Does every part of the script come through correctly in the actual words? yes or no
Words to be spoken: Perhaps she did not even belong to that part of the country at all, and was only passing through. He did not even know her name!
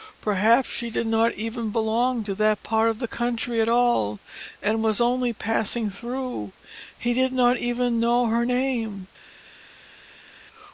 yes